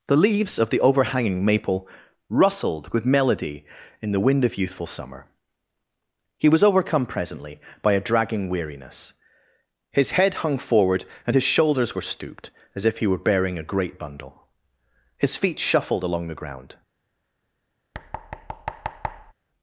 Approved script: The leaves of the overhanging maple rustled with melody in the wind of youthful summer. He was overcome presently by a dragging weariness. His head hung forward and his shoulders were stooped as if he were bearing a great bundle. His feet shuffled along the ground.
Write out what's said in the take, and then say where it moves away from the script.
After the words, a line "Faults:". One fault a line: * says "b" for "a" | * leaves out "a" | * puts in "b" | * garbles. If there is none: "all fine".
The leaves of the overhanging maple rustled with melody in the wind of youthful summer. He was overcome presently by a dragging weariness. His head hung forward and his shoulders were stooped as if he were bearing a great bundle. His feet shuffled along the ground.
Faults:
all fine